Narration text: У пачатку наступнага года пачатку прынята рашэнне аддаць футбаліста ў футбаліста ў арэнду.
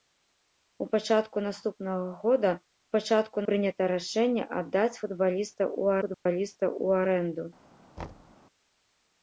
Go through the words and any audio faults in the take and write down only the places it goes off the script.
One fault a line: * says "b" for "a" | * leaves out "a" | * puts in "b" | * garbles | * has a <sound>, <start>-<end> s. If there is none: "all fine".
* has a dropout, 6.1-6.3 s
* has a thud, 8.0-8.3 s